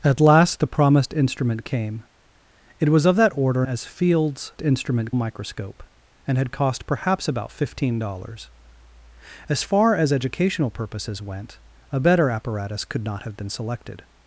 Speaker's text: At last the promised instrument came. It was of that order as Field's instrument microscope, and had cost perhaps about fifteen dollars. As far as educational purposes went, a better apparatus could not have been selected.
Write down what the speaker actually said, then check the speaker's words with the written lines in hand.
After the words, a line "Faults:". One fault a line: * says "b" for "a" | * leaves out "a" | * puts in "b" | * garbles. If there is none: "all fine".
At last the promised instrument came. It was of that order as Field's instrument microscope, and had cost perhaps about fifteen dollars. As far as educational purposes went, a better apparatus could not have been selected.
Faults:
all fine